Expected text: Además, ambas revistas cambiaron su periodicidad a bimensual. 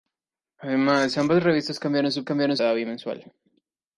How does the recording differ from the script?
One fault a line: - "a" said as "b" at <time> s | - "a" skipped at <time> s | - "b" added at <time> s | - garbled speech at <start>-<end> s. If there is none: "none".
- "periodicidad" said as "cambiaron" at 2.2 s